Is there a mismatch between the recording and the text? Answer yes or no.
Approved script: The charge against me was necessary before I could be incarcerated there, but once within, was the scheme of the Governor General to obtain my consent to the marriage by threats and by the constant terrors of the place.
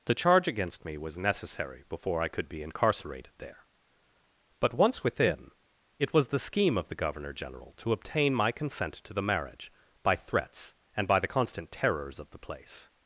yes